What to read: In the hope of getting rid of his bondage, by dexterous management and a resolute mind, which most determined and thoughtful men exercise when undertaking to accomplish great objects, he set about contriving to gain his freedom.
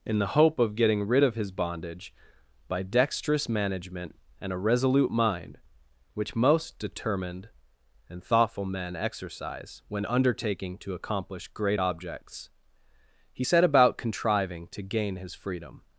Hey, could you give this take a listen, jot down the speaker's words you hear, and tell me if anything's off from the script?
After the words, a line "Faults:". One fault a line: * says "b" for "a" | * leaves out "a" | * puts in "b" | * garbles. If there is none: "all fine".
In the hope of getting rid of his bondage, by dexterous management and a resolute mind, which most determined and thoughtful men exercise when undertaking to accomplish great objects, he set about contriving to gain his freedom.
Faults:
all fine